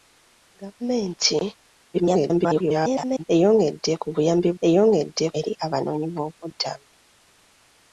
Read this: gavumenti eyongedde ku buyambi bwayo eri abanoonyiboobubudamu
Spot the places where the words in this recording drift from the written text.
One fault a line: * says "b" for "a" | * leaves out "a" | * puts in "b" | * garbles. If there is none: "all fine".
* garbles
* says "eyongedde" for "bwayo"